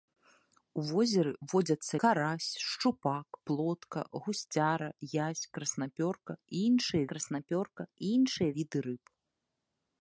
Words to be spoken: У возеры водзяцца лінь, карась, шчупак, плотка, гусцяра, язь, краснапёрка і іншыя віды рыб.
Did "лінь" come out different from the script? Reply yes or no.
yes